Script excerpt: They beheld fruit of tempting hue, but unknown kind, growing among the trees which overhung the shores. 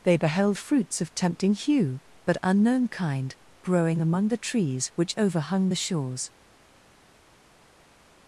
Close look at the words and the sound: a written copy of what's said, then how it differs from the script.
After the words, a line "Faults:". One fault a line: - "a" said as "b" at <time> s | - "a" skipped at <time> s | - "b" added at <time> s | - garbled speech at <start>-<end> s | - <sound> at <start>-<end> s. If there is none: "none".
They beheld fruits of tempting hue, but unknown kind, growing among the trees which overhung the shores.
Faults:
- "fruit" said as "fruits" at 0.5 s